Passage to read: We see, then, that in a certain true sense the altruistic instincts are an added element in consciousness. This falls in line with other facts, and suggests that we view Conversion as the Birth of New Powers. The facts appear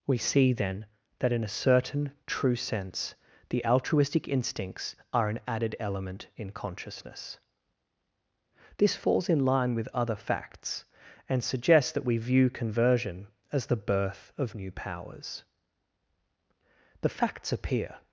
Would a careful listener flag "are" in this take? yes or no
no